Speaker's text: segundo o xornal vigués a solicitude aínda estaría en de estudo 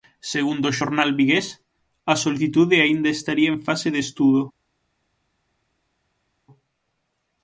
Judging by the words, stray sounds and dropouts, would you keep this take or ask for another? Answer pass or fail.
fail